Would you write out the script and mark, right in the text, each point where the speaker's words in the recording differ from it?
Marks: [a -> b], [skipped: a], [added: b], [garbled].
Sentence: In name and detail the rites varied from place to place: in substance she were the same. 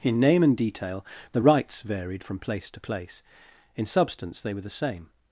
In name and detail the rites varied from place to place: in substance [she -> they] were the same.